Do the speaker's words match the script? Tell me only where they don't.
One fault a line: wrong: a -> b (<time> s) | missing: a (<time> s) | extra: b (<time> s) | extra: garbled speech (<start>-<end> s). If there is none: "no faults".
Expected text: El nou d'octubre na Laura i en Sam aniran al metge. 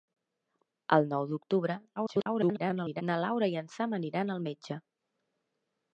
extra: garbled speech (2.0-3.0 s)